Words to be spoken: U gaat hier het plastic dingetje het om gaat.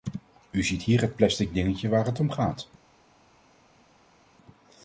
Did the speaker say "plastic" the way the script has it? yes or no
yes